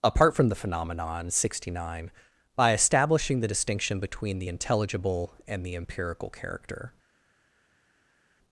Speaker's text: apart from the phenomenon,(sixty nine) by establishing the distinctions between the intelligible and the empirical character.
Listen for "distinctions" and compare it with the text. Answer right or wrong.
wrong